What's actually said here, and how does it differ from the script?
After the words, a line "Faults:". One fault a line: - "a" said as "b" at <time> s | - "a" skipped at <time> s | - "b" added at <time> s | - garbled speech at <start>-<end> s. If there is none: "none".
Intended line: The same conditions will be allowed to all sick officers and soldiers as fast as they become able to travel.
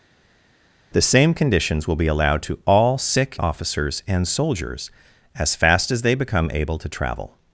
The same conditions will be allowed to all sick officers and soldiers as fast as they become able to travel.
Faults:
none